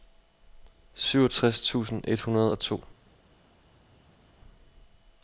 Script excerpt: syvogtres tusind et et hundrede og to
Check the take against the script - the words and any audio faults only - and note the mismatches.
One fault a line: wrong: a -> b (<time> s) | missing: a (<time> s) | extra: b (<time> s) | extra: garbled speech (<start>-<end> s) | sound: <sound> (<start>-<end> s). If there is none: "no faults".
missing: et (2.2 s)